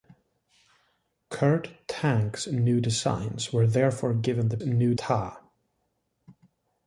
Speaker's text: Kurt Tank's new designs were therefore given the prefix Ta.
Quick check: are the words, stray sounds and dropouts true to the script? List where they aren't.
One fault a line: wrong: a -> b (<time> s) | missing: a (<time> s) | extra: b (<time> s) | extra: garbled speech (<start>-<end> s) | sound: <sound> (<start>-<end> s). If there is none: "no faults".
wrong: prefix -> new (4.6 s)